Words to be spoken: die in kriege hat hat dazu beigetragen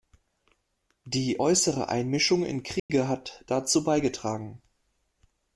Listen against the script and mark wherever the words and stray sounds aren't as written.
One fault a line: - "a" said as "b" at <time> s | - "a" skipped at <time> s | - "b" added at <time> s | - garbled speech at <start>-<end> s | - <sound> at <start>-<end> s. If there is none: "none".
- "äußere einmischung" added at 1.4 s
- dropout at 2.8-2.9 s
- "hat" skipped at 3.4 s